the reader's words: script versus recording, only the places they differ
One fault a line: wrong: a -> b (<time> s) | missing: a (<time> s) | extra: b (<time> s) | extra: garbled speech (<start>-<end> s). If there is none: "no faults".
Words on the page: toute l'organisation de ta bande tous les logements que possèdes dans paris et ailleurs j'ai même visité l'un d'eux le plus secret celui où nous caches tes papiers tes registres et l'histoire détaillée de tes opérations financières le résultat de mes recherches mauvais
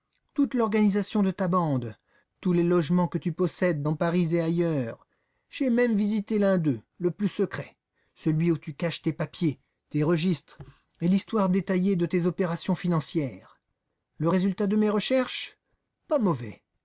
extra: tu (3.2 s)
wrong: nous -> tu (8.6 s)
extra: pas (16.1 s)